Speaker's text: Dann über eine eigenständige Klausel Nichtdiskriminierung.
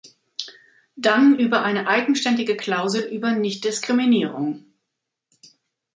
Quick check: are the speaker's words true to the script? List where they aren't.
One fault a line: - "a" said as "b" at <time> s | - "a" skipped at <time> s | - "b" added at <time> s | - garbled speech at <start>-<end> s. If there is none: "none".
- "über" added at 3.1 s